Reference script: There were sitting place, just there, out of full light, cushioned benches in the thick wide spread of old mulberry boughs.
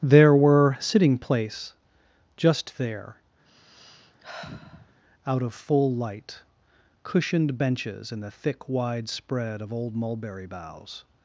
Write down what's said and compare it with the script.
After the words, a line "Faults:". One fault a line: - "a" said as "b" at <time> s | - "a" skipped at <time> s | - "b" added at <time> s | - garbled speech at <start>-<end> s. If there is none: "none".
There were sitting place, just there, out of full light, cushioned benches in the thick wide spread of old mulberry boughs.
Faults:
none